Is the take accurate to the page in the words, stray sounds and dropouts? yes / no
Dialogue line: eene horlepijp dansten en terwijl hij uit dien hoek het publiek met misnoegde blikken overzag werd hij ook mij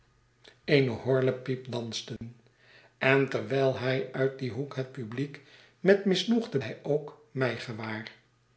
no